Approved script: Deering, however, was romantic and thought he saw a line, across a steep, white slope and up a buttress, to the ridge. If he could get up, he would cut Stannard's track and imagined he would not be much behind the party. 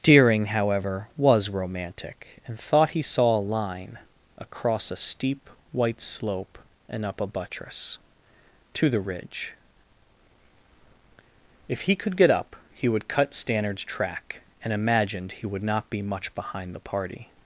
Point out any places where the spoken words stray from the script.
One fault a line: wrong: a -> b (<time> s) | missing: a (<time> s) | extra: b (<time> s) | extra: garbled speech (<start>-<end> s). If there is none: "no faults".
no faults